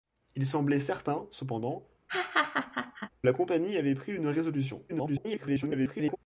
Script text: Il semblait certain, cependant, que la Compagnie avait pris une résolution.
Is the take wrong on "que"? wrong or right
wrong